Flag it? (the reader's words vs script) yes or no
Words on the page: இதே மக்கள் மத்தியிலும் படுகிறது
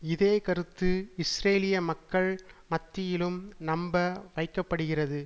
yes